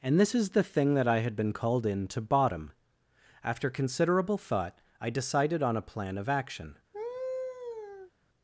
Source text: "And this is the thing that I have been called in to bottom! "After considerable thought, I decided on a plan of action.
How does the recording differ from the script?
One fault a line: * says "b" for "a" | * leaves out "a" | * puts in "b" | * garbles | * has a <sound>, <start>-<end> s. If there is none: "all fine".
* says "had" for "have"
* has a laugh, 6.9-8.1 s